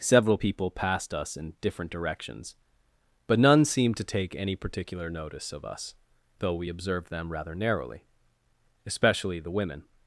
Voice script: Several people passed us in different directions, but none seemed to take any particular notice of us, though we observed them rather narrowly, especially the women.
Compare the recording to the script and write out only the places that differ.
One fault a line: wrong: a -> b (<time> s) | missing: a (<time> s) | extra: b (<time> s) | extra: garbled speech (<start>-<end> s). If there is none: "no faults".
no faults